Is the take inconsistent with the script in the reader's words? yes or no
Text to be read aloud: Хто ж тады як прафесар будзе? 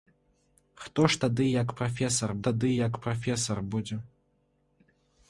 yes